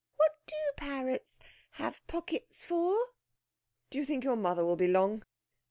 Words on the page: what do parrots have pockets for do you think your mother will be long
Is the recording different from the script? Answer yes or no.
no